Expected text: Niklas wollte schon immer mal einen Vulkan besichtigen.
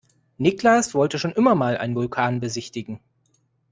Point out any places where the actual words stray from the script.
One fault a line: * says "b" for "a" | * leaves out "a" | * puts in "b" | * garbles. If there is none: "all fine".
all fine